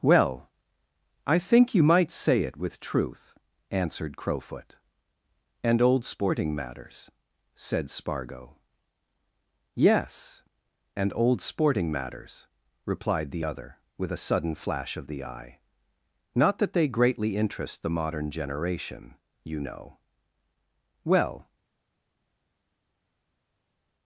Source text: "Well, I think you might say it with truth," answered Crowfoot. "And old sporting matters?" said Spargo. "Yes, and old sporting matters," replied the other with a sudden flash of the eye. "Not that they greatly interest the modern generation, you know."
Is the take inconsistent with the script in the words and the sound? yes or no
yes